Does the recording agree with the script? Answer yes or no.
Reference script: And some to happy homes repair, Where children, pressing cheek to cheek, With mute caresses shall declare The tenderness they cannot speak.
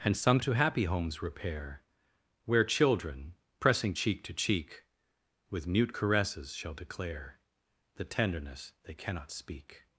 yes